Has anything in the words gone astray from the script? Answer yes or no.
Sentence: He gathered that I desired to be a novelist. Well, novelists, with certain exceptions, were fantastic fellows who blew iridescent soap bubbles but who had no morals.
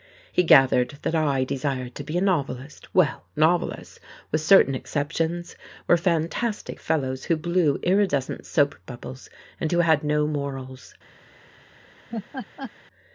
yes